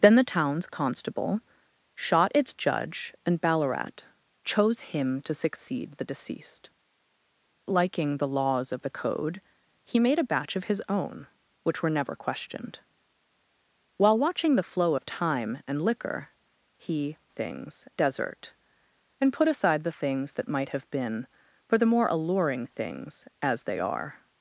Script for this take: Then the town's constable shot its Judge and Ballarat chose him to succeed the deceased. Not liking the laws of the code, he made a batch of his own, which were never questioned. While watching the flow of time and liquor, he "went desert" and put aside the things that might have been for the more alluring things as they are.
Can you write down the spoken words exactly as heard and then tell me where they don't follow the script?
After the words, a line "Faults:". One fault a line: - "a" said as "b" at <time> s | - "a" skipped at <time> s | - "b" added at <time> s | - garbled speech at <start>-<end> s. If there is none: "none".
Then the town's constable shot its Judge and Ballarat chose him to succeed the deceased. Liking the laws of the code, he made a batch of his own, which were never questioned. While watching the flow of time and liquor, he "things desert" and put aside the things that might have been for the more alluring things as they are.
Faults:
- "Not" skipped at 6.7 s
- "went" said as "things" at 17.3 s